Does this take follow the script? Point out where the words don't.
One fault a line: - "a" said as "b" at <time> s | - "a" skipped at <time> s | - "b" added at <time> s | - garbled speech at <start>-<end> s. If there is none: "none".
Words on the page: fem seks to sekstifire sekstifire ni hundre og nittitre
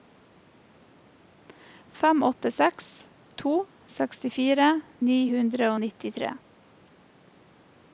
- "åtte" added at 2.2 s
- "sekstifire" skipped at 4.7 s